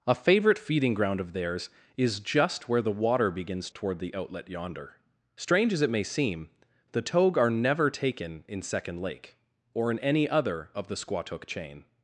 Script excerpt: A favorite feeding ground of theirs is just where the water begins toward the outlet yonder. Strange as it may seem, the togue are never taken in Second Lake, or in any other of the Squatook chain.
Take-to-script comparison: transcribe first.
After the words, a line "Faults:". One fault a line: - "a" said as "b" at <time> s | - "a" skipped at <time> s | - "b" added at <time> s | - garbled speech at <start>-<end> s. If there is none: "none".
A favorite feeding ground of theirs is just where the water begins toward the outlet yonder. Strange as it may seem, the togue are never taken in Second Lake, or in any other of the Squatook chain.
Faults:
none